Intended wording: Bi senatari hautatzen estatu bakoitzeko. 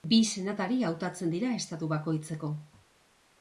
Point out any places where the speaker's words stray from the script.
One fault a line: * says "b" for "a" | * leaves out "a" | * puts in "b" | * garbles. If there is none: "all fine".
* puts in "dira"